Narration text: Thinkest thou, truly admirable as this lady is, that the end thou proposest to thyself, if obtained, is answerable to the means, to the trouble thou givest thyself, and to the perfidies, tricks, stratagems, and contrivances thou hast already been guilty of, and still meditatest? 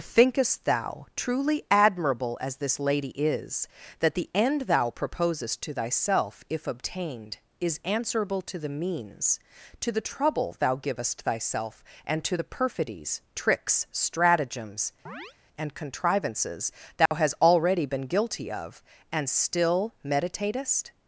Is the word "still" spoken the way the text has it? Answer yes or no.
yes